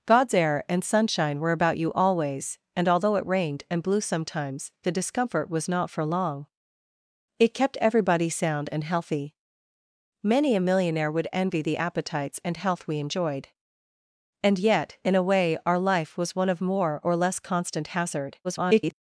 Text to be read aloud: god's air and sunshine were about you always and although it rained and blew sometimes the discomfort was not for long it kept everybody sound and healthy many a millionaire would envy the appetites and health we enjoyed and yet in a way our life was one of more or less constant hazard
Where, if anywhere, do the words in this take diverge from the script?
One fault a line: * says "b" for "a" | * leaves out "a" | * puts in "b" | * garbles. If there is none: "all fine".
* garbles